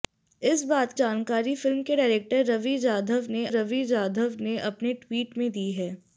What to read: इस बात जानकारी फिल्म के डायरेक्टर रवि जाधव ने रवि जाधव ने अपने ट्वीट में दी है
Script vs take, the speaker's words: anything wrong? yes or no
no